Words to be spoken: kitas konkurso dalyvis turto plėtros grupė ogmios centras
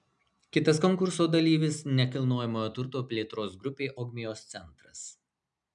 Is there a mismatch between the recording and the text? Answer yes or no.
yes